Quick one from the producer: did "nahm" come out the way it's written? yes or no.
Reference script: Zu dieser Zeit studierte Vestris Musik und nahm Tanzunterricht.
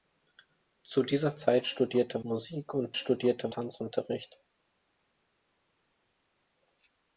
no